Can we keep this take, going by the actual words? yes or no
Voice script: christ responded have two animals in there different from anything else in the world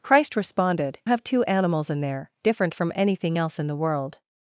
yes